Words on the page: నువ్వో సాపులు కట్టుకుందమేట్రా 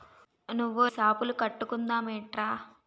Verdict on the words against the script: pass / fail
pass